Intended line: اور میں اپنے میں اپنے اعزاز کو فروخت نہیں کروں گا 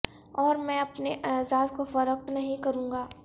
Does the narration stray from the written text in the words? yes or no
yes